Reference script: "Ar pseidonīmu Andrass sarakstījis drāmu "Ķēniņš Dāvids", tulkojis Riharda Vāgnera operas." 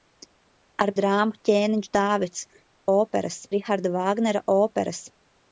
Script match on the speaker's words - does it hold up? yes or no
no